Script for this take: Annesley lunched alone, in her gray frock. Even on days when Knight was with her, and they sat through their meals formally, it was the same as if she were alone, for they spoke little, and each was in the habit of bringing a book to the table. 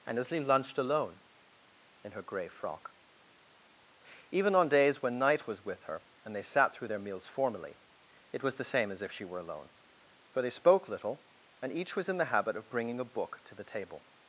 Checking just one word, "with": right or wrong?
right